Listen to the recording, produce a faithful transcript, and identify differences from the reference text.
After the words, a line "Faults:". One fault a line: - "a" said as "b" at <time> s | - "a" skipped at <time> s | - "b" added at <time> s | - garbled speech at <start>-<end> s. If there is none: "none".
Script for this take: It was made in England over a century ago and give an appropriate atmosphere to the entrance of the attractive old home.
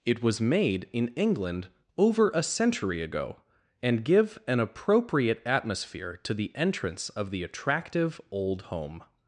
It was made in England over a century ago and give an appropriate atmosphere to the entrance of the attractive old home.
Faults:
none